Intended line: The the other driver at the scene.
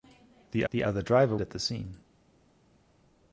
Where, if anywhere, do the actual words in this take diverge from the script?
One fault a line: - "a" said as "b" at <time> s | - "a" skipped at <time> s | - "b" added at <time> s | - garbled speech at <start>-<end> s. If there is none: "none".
none